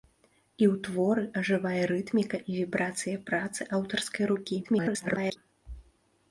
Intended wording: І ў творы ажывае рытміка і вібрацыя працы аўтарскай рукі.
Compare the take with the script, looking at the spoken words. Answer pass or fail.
fail